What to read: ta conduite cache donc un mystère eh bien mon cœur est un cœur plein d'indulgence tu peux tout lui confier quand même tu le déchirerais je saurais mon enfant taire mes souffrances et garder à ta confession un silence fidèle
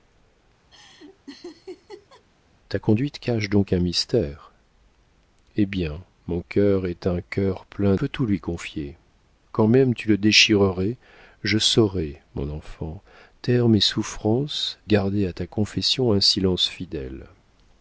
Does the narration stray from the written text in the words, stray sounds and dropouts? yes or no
yes